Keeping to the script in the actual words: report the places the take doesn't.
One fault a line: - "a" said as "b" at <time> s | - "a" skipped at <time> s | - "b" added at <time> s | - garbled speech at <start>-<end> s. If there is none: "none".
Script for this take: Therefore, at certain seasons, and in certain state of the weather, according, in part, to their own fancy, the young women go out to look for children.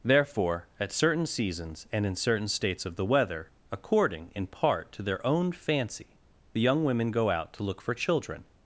- "state" said as "states" at 2.5 s